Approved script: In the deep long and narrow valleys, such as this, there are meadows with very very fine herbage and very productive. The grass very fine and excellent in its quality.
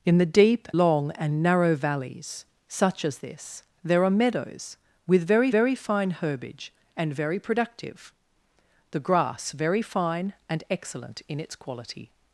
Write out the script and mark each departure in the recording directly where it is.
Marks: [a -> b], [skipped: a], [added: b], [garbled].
In the deep long and narrow valleys, such as this, there are meadows with very very fine herbage and very productive. The grass very fine and excellent in its quality.